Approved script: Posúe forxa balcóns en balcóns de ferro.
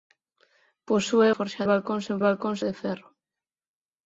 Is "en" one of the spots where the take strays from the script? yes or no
no